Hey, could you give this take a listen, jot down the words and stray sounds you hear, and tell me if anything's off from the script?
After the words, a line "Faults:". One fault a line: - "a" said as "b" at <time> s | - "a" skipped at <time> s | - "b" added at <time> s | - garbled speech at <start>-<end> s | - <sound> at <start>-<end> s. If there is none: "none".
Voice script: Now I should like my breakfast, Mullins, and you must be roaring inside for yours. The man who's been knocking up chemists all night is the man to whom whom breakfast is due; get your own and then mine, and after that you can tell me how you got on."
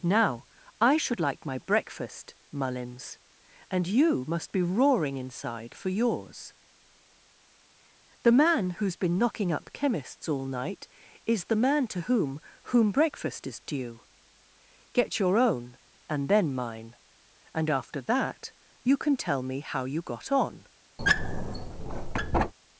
Now I should like my breakfast, Mullins, and you must be roaring inside for yours. The man who's been knocking up chemists all night is the man to whom whom breakfast is due; get your own and then mine, and after that you can tell me how you got on."
Faults:
- squeak at 21.0-22.5 s